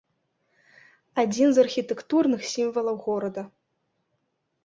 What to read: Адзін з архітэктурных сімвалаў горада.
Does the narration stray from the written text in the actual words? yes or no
no